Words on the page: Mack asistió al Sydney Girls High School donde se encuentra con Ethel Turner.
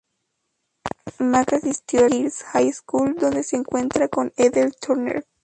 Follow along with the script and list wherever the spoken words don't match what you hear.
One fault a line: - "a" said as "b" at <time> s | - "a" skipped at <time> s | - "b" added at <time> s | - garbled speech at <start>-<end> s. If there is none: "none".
- "al Sydney" skipped at 2.0 s